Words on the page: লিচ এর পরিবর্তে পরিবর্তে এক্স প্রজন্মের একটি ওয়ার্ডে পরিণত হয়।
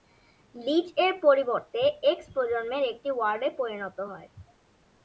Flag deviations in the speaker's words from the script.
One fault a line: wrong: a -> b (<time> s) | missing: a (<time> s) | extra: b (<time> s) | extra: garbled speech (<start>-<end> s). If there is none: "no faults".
missing: পরিবর্তে (1.8 s)